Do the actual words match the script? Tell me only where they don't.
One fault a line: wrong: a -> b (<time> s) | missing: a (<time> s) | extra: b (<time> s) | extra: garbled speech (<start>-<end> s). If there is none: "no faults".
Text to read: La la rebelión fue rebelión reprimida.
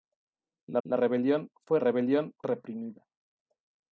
no faults